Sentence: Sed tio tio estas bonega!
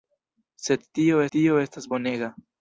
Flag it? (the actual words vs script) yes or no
no